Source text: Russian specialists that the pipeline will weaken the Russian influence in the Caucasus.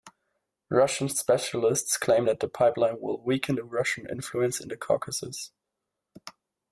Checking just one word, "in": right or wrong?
right